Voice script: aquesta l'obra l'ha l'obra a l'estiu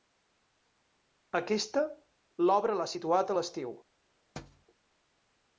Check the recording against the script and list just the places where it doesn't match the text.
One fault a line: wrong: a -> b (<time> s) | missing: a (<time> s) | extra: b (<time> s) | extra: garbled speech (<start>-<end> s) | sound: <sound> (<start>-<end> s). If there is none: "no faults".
wrong: l'obra -> situat (2.9 s)
sound: thud (4.4-4.7 s)